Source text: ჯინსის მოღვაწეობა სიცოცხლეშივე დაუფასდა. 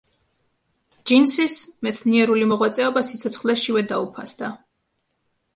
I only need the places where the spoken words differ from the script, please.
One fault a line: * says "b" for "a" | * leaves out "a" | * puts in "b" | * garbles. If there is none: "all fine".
* puts in "მეცნიერული"